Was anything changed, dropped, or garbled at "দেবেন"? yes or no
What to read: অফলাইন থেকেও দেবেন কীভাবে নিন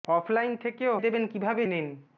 no